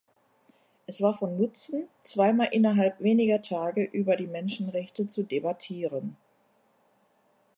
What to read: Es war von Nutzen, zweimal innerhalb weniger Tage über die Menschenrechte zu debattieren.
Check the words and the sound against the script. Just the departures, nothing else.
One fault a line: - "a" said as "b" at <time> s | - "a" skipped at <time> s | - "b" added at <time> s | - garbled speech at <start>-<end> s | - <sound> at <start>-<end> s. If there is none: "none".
none